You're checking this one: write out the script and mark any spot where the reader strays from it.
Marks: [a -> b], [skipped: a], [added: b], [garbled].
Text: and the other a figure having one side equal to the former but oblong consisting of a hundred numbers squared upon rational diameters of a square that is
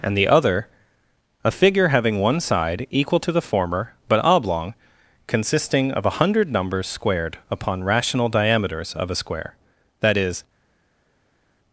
and the other a figure having one side equal to the former but oblong consisting of a hundred numbers squared upon rational diameters of a square that is